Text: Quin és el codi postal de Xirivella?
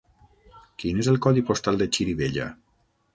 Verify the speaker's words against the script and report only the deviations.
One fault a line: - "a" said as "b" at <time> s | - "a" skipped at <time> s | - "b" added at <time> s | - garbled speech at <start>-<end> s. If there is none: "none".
none